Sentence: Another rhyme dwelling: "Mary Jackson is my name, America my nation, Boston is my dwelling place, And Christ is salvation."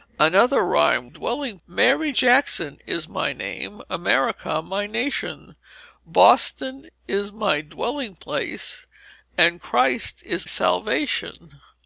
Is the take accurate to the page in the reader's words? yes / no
yes